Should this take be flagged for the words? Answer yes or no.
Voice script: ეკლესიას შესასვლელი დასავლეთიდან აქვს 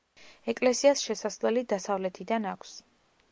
no